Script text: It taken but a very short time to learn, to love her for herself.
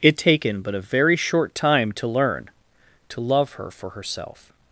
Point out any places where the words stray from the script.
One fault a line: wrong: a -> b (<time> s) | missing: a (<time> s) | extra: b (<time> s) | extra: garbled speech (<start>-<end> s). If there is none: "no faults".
no faults